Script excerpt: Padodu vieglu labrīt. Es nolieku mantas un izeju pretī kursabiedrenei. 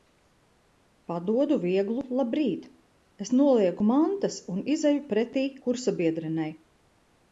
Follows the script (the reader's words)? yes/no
yes